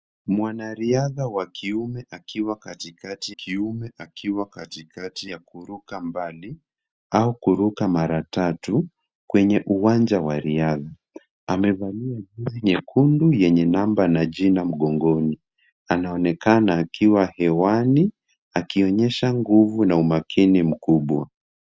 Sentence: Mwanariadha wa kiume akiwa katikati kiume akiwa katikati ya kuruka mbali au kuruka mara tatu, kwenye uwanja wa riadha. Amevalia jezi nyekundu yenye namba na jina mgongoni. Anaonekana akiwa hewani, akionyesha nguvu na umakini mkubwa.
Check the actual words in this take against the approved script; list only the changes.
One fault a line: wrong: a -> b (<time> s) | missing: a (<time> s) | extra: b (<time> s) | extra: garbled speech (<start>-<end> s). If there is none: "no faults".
no faults